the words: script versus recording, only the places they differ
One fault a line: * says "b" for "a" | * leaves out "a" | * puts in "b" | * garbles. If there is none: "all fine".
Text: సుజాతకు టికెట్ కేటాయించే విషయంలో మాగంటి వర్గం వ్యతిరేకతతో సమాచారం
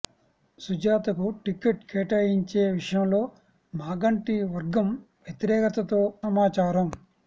all fine